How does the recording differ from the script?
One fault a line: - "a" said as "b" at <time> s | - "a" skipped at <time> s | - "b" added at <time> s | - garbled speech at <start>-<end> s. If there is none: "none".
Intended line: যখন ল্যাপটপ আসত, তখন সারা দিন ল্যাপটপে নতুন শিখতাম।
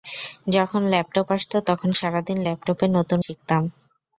none